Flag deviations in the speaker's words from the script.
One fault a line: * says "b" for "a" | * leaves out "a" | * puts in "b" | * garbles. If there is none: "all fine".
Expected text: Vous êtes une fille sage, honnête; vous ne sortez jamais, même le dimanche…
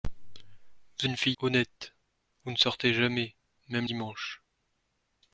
* leaves out "êtes"
* leaves out "sage"
* leaves out "le"